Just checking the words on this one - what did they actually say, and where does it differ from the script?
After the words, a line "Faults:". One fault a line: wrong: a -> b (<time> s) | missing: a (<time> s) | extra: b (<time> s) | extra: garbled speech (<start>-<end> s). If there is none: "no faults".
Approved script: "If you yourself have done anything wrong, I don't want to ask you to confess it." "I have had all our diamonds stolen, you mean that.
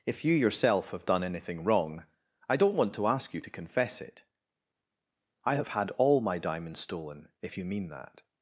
"If you yourself have done anything wrong, I don't want to ask you to confess it." "I have had all my diamonds stolen, if you mean that.
Faults:
wrong: our -> my (6.2 s)
extra: if (7.4 s)